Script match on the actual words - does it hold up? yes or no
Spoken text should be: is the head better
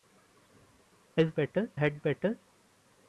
no